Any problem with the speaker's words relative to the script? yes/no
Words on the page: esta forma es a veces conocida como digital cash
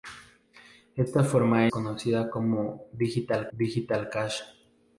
yes